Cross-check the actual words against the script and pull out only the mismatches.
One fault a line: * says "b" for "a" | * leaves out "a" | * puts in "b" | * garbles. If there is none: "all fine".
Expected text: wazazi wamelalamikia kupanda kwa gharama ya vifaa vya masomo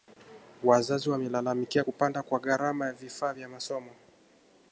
all fine